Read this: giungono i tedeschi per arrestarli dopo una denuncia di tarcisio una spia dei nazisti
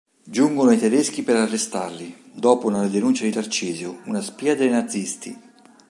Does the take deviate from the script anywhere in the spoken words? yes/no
no